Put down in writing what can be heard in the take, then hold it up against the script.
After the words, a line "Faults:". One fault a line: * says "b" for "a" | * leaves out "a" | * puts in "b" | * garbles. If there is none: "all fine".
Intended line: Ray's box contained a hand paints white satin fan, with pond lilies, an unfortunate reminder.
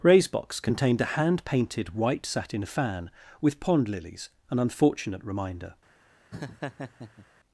Ray's box contained a hand painted white satin fan, with pond lilies, an unfortunate reminder.
Faults:
* says "painted" for "paints"